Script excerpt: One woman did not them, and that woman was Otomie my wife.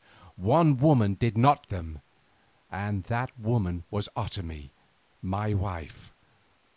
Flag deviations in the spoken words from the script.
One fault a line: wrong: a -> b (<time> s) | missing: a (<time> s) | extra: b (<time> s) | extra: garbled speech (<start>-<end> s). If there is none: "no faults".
no faults